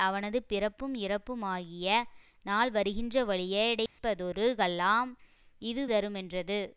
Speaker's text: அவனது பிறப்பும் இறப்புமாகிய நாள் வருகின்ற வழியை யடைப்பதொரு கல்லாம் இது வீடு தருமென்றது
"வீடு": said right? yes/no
no